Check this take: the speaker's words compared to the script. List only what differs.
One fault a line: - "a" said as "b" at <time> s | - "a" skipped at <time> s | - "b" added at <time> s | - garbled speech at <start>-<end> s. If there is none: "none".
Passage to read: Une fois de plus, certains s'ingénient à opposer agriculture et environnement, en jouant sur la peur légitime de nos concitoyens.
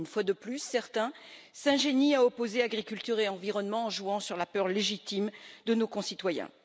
none